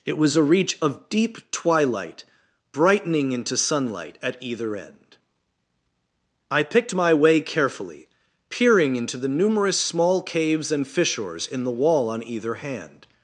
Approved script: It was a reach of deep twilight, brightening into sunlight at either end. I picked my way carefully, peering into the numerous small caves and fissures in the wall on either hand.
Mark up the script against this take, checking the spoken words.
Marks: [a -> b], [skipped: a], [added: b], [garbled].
It was a reach of deep twilight, brightening into sunlight at either end. I picked my way carefully, peering into the numerous small caves and fissures in the wall on either hand.